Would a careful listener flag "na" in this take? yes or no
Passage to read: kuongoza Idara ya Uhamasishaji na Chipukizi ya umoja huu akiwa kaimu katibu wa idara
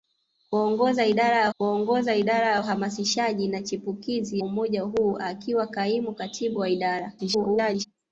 no